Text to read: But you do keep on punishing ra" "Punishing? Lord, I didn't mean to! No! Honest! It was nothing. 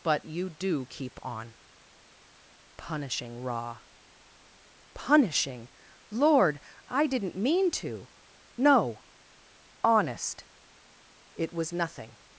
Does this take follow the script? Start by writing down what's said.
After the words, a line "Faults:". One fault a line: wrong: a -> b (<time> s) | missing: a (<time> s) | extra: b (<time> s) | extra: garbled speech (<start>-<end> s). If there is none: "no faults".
But you do keep on punishing ra" "Punishing? Lord, I didn't mean to! No! Honest! It was nothing.
Faults:
no faults